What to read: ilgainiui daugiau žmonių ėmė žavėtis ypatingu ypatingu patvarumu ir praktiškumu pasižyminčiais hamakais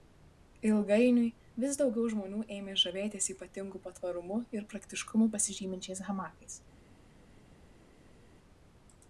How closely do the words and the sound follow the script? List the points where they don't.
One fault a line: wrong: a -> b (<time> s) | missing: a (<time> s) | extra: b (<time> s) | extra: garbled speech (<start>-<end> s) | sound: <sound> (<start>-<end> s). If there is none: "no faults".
extra: vis (1.6 s)
missing: ypatingu (3.8 s)